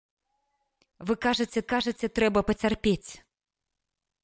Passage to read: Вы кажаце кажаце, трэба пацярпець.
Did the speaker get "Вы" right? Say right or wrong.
right